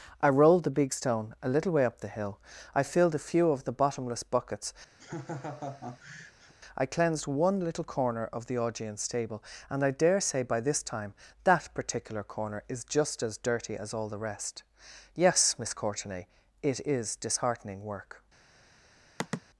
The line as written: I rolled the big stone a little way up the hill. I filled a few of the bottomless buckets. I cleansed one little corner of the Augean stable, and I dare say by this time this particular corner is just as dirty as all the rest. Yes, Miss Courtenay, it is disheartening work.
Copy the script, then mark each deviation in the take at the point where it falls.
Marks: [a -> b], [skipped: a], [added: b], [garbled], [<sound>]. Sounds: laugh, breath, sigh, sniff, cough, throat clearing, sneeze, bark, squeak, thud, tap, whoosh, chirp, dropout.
I rolled the big stone a little way up the hill. I filled a few of the bottomless buckets. [laugh] I cleansed one little corner of the Augean stable, and I dare say by this time [this -> that] particular corner is just as dirty as all the rest. Yes, Miss Courtenay, it is disheartening work. [sigh]